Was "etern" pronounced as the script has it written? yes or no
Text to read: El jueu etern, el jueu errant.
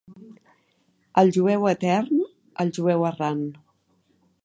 yes